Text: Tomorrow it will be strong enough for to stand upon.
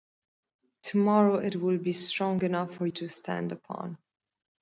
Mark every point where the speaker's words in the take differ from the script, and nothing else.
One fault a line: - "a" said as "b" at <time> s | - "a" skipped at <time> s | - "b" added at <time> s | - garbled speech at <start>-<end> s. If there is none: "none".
none